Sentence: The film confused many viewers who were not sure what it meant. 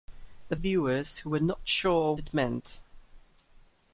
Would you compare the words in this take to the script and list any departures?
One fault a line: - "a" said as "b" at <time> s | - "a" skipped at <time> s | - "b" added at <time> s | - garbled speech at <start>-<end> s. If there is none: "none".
- "film confused many" skipped at 0.6 s
- "what" skipped at 2.1 s